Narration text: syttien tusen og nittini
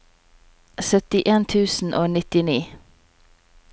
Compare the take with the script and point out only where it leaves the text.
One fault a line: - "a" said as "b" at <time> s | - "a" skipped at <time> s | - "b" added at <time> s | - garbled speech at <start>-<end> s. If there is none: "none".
none